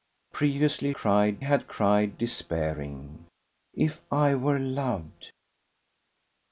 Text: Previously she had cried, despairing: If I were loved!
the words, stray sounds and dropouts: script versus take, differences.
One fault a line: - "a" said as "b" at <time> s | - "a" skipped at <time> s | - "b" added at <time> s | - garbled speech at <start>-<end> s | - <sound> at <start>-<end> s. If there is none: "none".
- "she" said as "cried" at 0.9 s